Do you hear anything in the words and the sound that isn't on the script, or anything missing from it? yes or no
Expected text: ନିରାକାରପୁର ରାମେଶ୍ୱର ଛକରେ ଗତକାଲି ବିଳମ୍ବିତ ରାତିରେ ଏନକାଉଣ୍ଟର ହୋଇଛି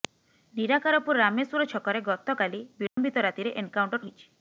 yes